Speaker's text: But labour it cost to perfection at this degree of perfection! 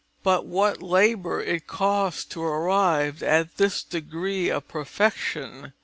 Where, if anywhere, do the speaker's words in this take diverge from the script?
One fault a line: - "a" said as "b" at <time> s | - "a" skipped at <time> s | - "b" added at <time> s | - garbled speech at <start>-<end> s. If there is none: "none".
- "what" added at 0.5 s
- "perfection" said as "arrive" at 2.4 s